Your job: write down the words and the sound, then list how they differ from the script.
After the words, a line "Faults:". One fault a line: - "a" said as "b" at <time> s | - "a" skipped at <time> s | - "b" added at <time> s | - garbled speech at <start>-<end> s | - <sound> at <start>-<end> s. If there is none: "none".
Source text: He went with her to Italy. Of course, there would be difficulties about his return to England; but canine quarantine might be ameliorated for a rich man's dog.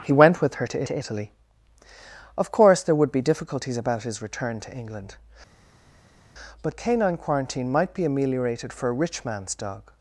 He went with her to to Italy. Of course, there would be difficulties about his return to England; but canine quarantine might be ameliorated for a rich man's dog.
Faults:
- "to" added at 0.8 s